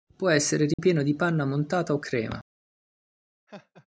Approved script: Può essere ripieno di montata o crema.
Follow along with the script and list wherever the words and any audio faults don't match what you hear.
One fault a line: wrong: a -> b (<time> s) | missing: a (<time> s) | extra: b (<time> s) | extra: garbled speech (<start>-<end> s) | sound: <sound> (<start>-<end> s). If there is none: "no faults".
sound: dropout (0.7-0.8 s)
extra: panna (1.1 s)
sound: laugh (3.5-3.9 s)